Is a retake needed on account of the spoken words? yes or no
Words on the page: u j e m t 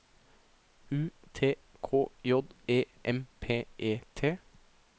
yes